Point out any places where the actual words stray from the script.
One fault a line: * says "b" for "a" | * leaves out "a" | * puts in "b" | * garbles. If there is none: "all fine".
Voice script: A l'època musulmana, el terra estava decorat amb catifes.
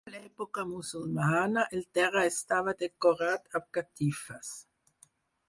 all fine